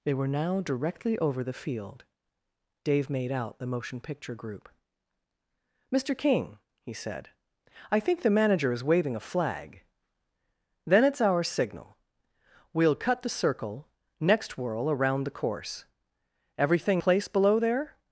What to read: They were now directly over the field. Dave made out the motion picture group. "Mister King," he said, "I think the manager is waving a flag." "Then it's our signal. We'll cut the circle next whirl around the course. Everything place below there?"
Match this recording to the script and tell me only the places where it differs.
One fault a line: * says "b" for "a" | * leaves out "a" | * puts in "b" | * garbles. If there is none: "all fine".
all fine